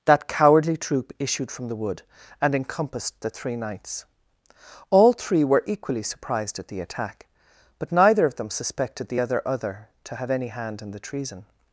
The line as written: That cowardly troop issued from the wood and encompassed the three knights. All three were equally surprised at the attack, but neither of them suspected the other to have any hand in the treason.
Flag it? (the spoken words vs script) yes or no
yes